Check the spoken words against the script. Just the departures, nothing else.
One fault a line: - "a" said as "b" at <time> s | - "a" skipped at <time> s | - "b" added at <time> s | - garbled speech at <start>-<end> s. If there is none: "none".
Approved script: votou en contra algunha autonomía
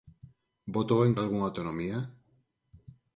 - "contra" skipped at 1.1 s